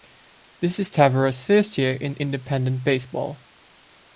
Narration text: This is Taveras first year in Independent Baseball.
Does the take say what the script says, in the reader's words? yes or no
yes